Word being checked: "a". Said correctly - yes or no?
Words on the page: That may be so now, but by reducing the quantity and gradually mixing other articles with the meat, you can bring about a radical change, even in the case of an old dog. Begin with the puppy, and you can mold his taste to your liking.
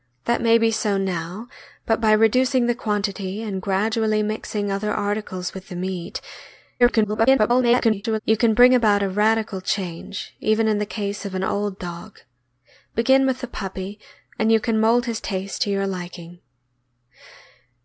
yes